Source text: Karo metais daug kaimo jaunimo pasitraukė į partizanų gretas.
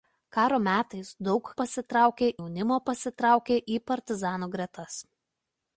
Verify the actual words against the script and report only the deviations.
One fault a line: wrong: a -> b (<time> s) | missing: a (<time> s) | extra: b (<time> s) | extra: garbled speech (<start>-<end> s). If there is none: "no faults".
wrong: kaimo -> pasitraukė (1.6 s)